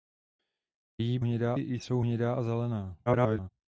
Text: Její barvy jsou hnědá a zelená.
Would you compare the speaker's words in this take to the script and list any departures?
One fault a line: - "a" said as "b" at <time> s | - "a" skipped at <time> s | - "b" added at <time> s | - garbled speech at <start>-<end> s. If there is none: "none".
- "barvy" said as "hnědá" at 1.2 s
- garbled speech at 3.1-3.5 s